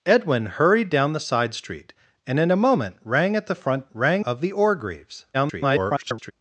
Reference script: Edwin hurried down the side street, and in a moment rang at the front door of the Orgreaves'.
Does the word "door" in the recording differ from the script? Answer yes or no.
yes